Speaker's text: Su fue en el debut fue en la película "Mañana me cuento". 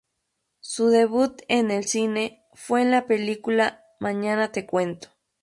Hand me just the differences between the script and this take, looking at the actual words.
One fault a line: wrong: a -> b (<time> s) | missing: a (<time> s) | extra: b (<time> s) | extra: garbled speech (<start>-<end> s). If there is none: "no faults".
wrong: fue -> debut (0.9 s)
wrong: debut -> cine (1.9 s)
wrong: me -> te (4.5 s)